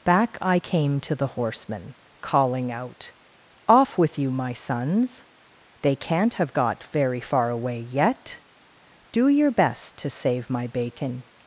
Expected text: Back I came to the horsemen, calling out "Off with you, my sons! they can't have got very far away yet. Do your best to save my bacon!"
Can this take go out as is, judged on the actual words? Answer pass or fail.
pass